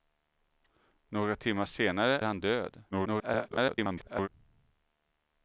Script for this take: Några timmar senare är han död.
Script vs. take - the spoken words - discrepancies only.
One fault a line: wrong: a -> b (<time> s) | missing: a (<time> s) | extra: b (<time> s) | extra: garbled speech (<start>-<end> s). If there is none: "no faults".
missing: är (2.2 s)
extra: garbled speech (2.9-4.3 s)